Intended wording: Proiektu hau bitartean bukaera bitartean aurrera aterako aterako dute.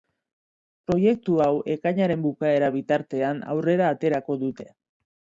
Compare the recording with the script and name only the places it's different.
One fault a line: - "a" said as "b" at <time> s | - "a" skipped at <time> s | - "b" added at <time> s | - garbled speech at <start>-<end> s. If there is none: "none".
- "bitartean" said as "ekainaren" at 1.7 s
- "aterako" skipped at 4.4 s